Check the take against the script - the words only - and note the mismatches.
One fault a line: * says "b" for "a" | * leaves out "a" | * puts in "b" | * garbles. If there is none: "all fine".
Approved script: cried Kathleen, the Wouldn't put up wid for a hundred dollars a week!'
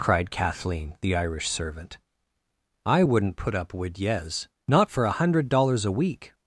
* puts in "Irish servant I"
* puts in "yez not"